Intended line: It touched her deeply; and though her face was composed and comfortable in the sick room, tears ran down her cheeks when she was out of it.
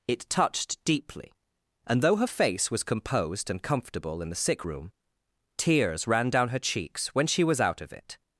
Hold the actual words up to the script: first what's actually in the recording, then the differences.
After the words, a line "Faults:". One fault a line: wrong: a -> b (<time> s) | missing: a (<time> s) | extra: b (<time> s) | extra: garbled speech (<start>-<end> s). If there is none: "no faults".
It touched deeply; and though her face was composed and comfortable in the sick room, tears ran down her cheeks when she was out of it.
Faults:
missing: her (0.8 s)